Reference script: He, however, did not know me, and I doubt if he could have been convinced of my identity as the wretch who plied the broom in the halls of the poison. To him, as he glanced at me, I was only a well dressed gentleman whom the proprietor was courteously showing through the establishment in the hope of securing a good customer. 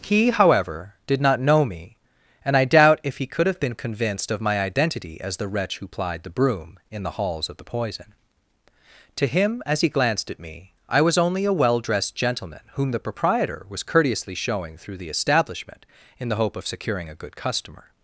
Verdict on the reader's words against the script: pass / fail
pass